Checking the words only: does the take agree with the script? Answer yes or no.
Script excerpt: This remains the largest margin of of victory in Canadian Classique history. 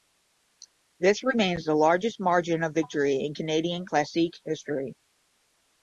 no